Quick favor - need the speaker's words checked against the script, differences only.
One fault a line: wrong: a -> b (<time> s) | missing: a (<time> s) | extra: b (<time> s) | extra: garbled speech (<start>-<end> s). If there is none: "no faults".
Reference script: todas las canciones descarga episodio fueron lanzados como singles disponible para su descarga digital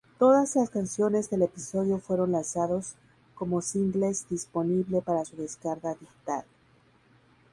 wrong: descarga -> del (1.3 s)